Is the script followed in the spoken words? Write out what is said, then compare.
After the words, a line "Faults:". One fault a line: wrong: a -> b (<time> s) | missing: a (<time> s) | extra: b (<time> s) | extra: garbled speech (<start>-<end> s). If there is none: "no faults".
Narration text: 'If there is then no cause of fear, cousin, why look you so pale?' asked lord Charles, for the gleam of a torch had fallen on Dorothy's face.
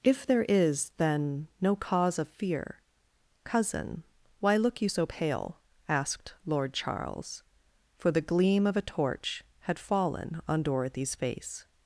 'If there is then no cause of fear, cousin, why look you so pale?' asked lord Charles, for the gleam of a torch had fallen on Dorothy's face.
Faults:
no faults